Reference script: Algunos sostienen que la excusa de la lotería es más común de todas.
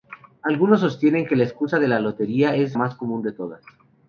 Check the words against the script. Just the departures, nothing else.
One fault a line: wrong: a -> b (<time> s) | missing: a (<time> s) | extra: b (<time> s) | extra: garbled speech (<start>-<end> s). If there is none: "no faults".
no faults